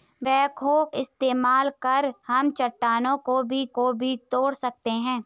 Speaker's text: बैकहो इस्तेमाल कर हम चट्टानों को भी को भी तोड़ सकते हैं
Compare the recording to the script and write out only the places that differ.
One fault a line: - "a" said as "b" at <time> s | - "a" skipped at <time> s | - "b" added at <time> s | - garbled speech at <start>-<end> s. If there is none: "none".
none